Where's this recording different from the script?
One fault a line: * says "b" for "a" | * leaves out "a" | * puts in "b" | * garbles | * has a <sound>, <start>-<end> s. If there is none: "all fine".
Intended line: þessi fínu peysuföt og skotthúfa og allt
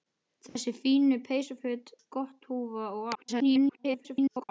* has a dropout, 0.5-0.6 s
* leaves out "og"
* garbles